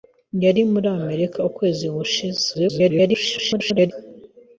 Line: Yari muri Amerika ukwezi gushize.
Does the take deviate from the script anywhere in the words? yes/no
yes